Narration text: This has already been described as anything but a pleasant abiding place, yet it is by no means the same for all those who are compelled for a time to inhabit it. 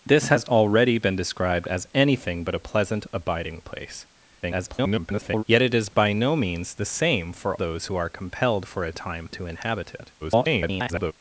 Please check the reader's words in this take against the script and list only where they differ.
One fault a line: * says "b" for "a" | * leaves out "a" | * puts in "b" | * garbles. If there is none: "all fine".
* garbles
* leaves out "all"
* garbles